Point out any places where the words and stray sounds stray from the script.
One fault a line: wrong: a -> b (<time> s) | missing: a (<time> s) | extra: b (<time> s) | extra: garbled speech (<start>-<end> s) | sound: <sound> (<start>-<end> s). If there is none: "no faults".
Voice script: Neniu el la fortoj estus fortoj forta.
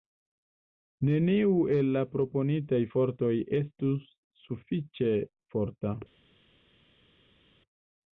extra: proponitaj (2.1 s)
wrong: fortoj -> sufiĉe (4.5 s)